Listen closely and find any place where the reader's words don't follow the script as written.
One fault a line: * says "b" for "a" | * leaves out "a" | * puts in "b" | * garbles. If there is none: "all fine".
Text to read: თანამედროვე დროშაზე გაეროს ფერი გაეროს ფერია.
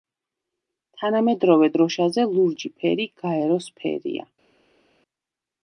* says "ლურჯი" for "გაეროს"